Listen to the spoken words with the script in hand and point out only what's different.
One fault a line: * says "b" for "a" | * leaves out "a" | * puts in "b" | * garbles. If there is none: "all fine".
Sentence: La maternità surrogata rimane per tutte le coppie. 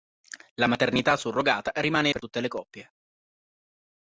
all fine